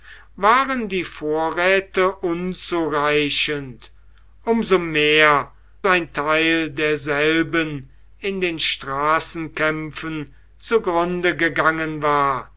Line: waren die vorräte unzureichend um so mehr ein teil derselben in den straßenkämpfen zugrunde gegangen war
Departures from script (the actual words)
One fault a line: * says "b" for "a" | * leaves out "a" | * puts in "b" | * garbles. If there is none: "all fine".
all fine